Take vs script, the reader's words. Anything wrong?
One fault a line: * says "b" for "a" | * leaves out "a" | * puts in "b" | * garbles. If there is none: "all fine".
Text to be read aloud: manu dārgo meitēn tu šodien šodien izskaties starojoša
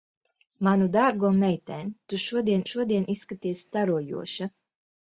all fine